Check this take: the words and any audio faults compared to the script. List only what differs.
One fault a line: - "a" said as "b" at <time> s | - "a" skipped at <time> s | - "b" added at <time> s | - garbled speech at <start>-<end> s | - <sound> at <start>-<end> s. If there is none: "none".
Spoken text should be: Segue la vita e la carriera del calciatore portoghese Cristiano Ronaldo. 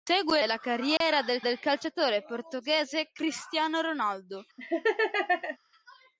- "la vita" skipped at 0.4 s
- dropout at 1.0-1.0 s
- "del" added at 1.4 s
- laugh at 4.6-5.6 s